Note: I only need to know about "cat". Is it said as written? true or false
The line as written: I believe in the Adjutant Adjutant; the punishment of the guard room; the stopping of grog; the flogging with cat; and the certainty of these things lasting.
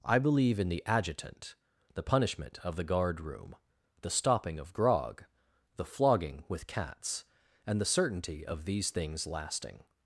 false